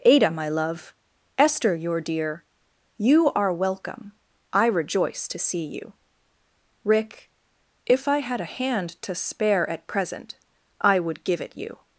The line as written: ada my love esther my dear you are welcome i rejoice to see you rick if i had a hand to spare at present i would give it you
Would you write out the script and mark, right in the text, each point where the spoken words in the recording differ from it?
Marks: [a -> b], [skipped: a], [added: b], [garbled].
ada my love esther [my -> your] dear you are welcome i rejoice to see you rick if i had a hand to spare at present i would give it you